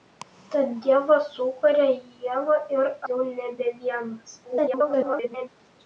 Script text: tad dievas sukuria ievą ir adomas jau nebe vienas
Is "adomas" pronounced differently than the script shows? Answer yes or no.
yes